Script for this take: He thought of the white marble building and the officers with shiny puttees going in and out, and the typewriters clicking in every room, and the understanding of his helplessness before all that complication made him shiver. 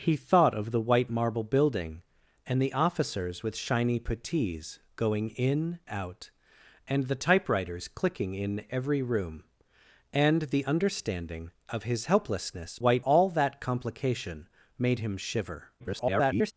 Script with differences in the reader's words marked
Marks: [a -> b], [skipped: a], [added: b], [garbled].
He thought of the white marble building and the officers with shiny puttees going in [skipped: and] out, and the typewriters clicking in every room, and the understanding of his helplessness [before -> white] all that complication made him shiver. [garbled]